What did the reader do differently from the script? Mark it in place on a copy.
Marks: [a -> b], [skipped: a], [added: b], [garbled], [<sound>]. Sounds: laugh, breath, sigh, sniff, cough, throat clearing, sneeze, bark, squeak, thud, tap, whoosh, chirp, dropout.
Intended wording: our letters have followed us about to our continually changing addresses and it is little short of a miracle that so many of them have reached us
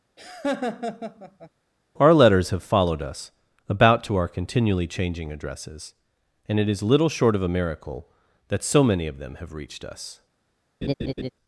[laugh] our letters have followed us about to our continually changing addresses and it is little short of a miracle that so many of them have reached us [laugh]